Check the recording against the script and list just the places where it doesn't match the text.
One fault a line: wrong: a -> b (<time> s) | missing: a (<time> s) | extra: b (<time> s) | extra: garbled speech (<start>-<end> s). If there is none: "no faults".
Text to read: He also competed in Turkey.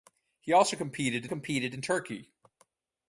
extra: competed (1.3 s)